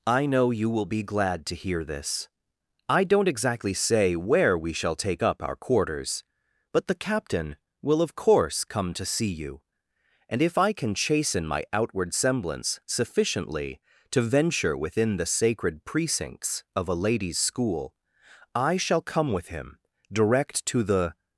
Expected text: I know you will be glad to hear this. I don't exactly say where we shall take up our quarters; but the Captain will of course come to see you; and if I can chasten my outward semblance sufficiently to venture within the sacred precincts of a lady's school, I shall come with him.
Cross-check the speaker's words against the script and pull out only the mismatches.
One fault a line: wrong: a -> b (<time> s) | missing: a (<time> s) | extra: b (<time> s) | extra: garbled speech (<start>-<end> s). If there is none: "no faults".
extra: Direct to the (20.1 s)